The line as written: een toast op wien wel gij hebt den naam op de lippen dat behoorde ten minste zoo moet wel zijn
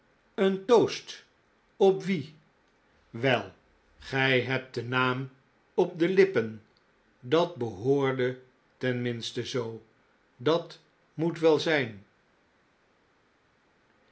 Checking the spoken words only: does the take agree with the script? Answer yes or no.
no